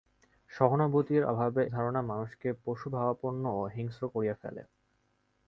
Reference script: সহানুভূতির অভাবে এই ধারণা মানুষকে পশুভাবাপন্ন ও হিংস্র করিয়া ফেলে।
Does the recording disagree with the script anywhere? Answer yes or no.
yes